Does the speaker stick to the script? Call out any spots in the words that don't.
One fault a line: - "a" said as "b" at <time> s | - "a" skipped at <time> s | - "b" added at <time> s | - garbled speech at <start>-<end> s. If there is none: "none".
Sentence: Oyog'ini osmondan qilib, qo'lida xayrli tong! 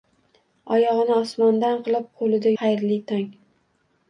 none